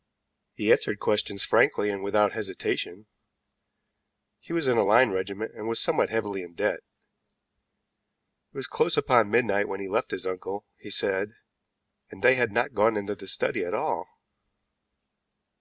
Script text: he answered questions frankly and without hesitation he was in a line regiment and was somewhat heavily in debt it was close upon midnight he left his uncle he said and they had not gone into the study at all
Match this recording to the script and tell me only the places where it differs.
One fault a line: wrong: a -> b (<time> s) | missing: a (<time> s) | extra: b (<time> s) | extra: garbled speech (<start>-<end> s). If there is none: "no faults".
extra: when (9.7 s)